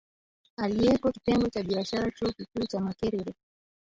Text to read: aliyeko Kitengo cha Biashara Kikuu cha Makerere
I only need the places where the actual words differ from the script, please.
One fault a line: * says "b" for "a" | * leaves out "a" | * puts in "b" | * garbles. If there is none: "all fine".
* puts in "Chuo"